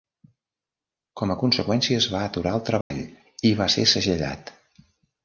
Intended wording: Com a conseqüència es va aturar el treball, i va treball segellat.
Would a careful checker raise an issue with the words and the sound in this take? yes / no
yes